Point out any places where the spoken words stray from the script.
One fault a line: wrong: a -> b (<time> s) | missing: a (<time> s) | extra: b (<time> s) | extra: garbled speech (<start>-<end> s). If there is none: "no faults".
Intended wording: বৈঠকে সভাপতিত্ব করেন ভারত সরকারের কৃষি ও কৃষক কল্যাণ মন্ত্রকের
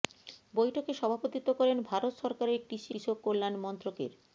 missing: ও (2.9 s)